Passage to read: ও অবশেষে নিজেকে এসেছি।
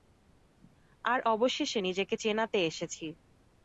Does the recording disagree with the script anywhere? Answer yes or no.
yes